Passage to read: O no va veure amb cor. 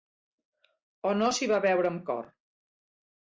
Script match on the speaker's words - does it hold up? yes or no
no